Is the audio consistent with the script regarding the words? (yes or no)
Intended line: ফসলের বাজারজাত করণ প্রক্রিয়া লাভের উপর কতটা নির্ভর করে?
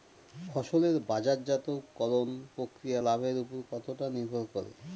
yes